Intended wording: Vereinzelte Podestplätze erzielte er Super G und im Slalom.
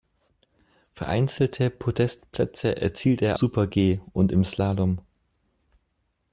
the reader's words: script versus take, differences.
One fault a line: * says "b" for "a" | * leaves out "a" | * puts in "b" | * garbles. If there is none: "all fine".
all fine